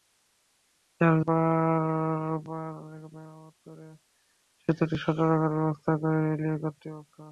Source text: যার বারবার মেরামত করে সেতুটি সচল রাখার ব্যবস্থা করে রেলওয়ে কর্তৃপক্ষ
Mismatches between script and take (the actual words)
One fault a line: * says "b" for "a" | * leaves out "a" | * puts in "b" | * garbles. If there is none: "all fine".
all fine